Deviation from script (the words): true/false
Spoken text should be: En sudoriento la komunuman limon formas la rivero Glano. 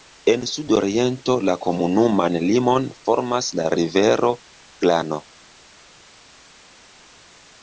false